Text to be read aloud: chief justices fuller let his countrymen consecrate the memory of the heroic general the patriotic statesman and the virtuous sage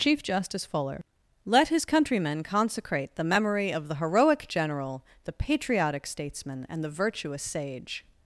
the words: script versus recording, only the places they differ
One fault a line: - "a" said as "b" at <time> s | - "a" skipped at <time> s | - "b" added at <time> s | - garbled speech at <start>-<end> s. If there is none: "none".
- "justices" said as "justice" at 0.2 s